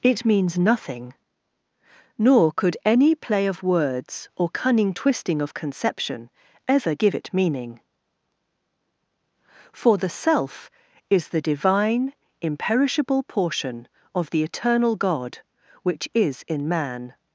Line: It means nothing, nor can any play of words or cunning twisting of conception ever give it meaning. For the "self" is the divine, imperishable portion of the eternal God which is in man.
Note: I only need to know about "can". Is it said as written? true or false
false